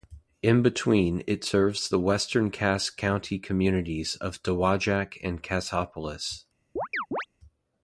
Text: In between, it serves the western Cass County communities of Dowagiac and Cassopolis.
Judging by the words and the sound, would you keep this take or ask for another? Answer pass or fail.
fail